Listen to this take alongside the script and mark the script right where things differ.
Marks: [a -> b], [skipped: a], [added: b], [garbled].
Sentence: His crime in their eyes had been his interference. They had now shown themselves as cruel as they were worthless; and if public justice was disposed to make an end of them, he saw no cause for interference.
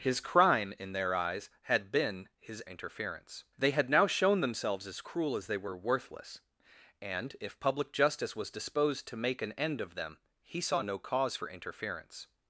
His crime in their eyes had been his interference. They had now shown themselves as cruel as they were worthless; and if public justice was disposed to make an end of them, he saw no cause for interference.